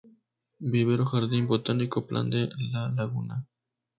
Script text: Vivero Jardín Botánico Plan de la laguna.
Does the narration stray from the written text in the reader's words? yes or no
no